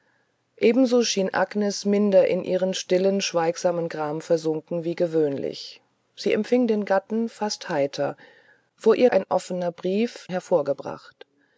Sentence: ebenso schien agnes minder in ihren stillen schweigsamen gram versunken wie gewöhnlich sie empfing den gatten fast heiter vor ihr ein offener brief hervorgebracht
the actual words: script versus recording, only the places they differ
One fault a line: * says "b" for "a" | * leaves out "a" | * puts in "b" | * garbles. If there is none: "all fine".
all fine